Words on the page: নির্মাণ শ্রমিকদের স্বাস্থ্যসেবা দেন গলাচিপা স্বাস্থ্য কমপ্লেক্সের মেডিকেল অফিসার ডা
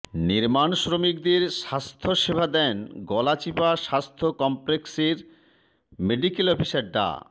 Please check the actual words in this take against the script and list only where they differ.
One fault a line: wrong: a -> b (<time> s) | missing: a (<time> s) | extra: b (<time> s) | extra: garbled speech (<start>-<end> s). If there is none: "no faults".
no faults